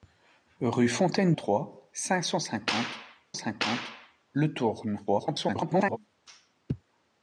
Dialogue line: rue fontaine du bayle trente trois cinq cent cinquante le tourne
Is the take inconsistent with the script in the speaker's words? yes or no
yes